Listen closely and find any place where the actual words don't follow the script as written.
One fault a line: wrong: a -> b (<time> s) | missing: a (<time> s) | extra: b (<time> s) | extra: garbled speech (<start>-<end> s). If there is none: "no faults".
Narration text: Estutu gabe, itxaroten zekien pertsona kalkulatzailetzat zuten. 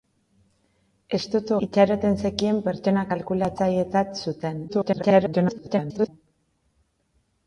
missing: gabe (1.6 s)
extra: garbled speech (4.7-6.1 s)